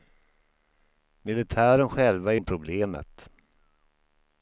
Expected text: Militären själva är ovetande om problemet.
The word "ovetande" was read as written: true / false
false